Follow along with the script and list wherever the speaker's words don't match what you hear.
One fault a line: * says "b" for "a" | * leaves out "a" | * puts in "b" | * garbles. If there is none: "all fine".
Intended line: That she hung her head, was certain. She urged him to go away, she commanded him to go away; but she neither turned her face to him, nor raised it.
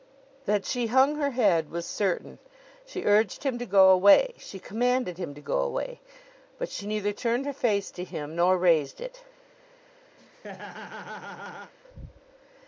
all fine